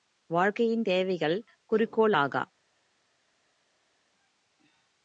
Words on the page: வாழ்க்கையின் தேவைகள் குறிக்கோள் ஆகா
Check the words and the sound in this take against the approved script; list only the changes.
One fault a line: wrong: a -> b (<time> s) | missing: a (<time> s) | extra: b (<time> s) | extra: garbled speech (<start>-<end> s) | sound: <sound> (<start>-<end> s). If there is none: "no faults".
no faults